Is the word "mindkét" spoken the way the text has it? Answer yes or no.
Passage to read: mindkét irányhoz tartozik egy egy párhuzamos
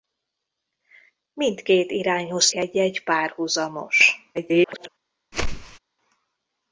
yes